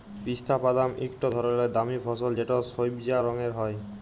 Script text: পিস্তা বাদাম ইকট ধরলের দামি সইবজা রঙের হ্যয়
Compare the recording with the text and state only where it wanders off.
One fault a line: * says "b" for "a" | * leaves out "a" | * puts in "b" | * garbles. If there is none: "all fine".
* puts in "ফসল যেট"